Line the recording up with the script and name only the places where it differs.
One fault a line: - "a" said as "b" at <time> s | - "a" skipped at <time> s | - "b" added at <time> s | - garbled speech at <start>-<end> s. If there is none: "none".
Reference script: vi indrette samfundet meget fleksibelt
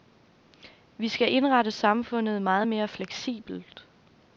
- "skal" added at 1.1 s
- "mere" added at 2.7 s